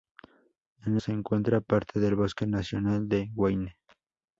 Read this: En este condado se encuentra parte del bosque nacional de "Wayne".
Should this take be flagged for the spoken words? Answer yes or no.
yes